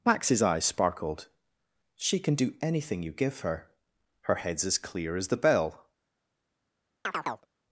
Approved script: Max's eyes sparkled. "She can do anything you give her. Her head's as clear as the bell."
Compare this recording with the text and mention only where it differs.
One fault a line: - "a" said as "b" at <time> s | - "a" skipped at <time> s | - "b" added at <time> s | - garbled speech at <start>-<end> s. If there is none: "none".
none